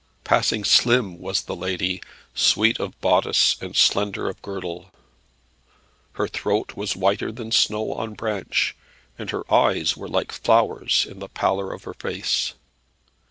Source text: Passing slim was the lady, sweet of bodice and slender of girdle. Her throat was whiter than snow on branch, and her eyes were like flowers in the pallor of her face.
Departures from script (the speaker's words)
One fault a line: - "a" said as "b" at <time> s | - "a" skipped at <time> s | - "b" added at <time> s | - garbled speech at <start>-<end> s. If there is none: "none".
none